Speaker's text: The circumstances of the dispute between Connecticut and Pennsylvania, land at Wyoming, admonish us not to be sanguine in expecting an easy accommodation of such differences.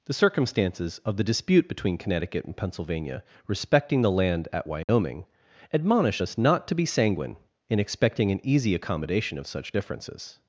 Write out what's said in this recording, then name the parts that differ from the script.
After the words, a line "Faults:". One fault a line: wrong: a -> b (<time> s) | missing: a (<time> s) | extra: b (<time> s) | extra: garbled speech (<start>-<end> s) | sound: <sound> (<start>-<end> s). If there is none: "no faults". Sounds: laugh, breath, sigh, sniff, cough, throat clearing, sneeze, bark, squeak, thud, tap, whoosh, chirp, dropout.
The circumstances of the dispute between Connecticut and Pennsylvania, respecting the land at Wyoming, admonish us not to be sanguine in expecting an easy accommodation of such differences.
Faults:
extra: respecting the (3.5 s)
sound: dropout (4.8-4.9 s)